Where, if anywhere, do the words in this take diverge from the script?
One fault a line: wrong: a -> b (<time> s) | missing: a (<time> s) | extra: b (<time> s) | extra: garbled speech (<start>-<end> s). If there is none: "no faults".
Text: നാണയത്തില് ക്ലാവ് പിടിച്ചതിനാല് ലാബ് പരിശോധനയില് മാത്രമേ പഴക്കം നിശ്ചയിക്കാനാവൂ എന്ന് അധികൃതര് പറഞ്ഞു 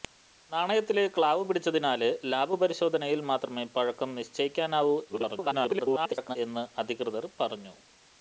extra: garbled speech (5.1-6.4 s)